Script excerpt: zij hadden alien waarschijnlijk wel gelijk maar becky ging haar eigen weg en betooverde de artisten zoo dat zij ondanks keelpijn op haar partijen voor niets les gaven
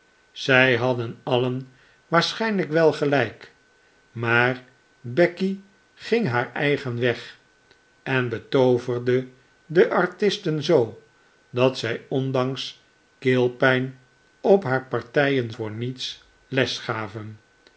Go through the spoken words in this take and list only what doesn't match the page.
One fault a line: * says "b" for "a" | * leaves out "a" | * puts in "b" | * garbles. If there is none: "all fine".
all fine